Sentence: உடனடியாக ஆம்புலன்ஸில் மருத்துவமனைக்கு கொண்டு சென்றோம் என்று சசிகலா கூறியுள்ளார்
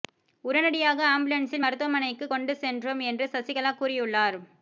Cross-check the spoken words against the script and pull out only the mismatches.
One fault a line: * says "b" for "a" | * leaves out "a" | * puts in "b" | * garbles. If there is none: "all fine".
all fine